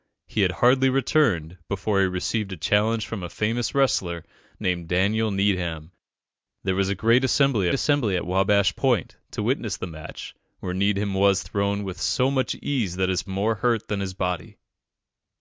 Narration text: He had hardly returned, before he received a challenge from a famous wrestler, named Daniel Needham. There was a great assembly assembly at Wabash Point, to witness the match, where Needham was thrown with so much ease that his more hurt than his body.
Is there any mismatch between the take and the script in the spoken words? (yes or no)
no